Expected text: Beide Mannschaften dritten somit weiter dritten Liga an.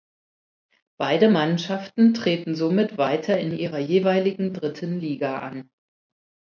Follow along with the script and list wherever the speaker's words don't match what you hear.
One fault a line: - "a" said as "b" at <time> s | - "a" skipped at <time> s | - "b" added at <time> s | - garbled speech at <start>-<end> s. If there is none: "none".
- "dritten" said as "treten" at 2.1 s
- "in ihrer jeweiligen" added at 3.4 s